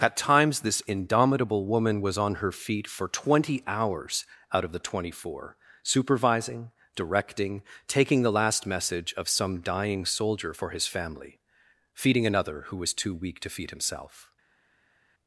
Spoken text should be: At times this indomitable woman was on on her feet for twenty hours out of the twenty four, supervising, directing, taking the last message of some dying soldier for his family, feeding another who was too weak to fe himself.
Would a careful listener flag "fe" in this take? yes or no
yes